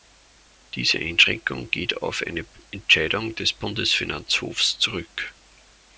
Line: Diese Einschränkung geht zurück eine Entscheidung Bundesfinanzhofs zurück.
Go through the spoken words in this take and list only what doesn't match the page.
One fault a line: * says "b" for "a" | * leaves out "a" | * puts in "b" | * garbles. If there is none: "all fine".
* says "auf" for "zurück"
* puts in "des"